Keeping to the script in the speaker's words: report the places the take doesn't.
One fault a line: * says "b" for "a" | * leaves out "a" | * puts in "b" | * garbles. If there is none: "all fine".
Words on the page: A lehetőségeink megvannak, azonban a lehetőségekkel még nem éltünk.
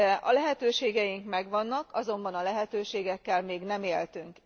all fine